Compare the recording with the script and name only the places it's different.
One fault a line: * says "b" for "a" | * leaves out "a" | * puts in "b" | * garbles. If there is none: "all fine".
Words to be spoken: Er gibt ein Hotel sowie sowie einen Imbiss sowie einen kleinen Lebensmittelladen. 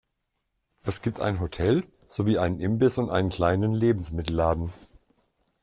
* says "Es" for "Er"
* leaves out "sowie"
* says "und" for "sowie"